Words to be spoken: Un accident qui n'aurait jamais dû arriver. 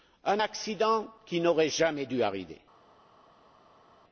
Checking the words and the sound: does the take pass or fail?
pass